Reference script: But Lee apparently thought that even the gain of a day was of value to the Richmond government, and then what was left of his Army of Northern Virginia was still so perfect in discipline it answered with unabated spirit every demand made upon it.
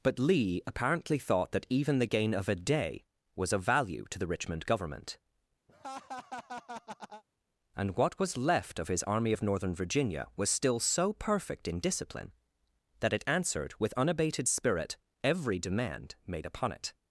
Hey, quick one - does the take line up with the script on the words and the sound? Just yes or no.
no